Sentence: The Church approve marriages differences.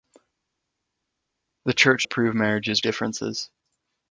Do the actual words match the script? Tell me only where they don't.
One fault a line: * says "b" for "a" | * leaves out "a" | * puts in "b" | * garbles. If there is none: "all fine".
all fine